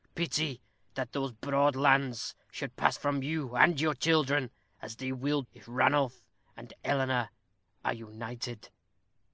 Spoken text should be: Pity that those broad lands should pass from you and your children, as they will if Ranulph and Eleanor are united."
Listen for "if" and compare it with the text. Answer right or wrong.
right